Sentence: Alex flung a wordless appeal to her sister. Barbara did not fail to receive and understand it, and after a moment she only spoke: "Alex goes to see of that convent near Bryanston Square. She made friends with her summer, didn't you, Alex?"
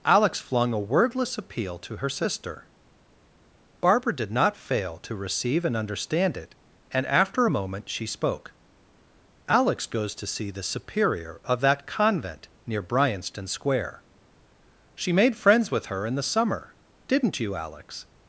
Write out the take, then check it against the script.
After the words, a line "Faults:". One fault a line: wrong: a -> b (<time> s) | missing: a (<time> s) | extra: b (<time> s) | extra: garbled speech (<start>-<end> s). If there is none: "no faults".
Alex flung a wordless appeal to her sister. Barbara did not fail to receive and understand it, and after a moment she spoke: "Alex goes to see the Superior of that convent near Bryanston Square. She made friends with her in the summer, didn't you, Alex?"
Faults:
missing: only (8.1 s)
extra: the Superior (10.5 s)
extra: in the (16.1 s)